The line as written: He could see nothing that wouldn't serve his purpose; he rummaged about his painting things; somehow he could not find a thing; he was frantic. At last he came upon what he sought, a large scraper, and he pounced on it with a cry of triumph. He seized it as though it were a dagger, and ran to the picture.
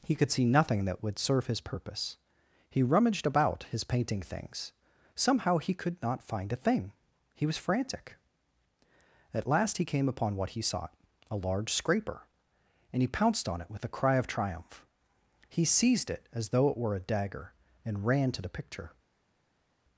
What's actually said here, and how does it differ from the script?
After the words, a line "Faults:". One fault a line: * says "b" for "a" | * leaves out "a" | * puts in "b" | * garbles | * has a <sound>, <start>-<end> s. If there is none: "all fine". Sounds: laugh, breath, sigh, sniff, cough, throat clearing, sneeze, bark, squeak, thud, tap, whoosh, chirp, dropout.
He could see nothing that would serve his purpose; he rummaged about his painting things; somehow he could not find a thing; he was frantic. At last he came upon what he sought, a large scraper, and he pounced on it with a cry of triumph. He seized it as though it were a dagger, and ran to the picture.
Faults:
* says "would" for "wouldn't"